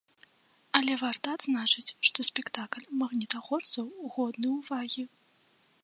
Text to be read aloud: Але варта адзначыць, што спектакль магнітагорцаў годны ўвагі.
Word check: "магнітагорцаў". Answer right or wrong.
right